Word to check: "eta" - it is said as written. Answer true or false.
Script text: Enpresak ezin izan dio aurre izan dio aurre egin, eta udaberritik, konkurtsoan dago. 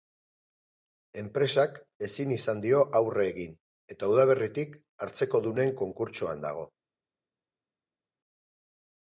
true